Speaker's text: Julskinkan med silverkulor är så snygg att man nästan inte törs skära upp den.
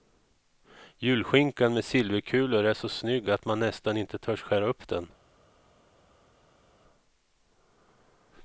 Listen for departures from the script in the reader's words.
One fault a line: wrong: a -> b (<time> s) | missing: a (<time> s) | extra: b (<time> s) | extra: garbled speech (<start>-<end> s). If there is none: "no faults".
no faults